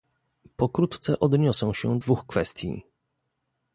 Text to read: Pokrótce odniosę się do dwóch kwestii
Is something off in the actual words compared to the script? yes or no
yes